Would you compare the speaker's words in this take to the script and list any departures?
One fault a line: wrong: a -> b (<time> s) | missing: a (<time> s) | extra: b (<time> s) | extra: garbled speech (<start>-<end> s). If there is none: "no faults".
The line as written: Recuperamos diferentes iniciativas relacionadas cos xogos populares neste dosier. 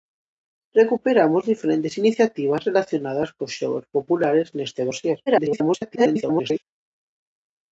extra: garbled speech (5.3-6.6 s)